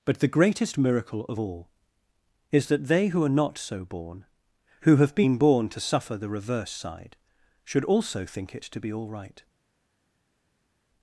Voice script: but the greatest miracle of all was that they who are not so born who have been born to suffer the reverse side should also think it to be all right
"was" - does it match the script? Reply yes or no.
no